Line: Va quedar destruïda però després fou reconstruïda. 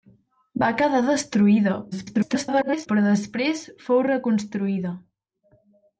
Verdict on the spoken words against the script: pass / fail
fail